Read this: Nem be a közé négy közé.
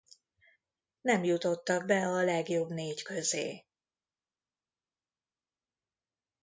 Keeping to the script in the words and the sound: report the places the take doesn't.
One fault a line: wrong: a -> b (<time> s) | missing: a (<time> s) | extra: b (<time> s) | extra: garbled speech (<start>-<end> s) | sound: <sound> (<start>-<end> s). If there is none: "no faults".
extra: jutottak (1.2 s)
wrong: közé -> legjobb (2.2 s)